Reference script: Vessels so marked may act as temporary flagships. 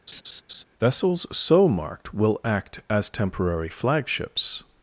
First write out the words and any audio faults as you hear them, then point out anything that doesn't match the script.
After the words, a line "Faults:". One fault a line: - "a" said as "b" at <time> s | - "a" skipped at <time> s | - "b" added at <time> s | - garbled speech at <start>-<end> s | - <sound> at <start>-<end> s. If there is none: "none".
Vessels so marked will act as temporary flagships.
Faults:
- laugh at 0.1-0.6 s
- "may" said as "will" at 2.1 s